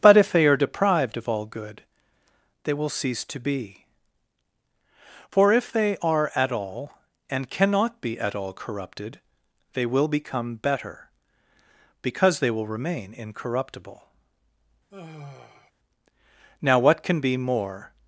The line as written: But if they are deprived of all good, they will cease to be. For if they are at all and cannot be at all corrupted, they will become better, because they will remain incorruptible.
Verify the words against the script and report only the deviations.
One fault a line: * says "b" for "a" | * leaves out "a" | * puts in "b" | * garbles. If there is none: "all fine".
* puts in "Now what can be more"